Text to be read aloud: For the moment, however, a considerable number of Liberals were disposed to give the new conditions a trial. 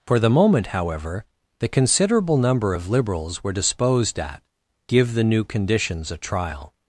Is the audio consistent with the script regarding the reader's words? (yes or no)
no